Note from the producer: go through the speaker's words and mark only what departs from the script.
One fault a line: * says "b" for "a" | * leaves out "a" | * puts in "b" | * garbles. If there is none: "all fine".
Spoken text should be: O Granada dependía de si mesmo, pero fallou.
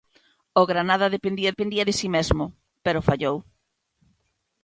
* puts in "dependía"